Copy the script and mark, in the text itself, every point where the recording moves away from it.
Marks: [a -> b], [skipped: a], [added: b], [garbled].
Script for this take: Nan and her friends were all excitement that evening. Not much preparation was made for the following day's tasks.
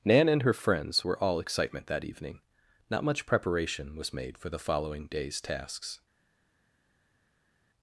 Nan and her friends were all excitement that evening. Not much preparation was made for the following day's tasks.